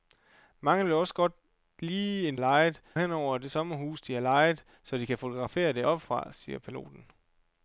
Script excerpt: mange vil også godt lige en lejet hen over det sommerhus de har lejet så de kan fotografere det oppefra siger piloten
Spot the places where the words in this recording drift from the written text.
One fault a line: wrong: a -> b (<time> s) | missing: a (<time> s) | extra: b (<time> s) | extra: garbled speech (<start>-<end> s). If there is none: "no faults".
no faults